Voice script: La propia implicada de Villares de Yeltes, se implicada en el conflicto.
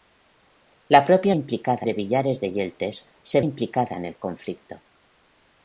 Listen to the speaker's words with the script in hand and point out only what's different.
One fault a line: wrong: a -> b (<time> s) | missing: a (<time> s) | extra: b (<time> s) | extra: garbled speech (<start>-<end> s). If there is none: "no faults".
no faults